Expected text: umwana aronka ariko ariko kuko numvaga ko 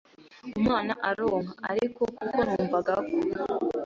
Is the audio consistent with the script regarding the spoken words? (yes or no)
no